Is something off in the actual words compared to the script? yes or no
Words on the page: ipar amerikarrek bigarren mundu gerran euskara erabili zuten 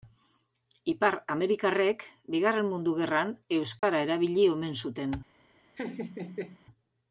yes